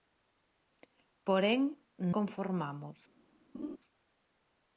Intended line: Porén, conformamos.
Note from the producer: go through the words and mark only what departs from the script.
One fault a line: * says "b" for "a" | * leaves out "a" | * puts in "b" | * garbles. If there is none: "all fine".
all fine